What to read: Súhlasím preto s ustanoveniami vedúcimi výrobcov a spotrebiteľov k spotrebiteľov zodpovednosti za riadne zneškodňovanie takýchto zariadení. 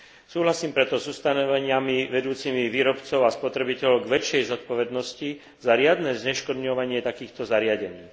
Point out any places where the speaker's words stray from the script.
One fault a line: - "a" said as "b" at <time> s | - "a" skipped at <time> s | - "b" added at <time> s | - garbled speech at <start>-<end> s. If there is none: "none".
- "spotrebiteľov" said as "väčšej" at 4.1 s